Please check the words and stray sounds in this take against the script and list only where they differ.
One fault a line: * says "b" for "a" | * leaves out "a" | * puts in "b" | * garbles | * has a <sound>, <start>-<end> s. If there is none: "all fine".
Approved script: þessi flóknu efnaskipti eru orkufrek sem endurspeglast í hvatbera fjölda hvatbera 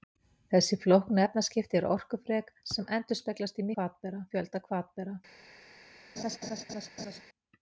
* has a laugh, 6.2-7.2 s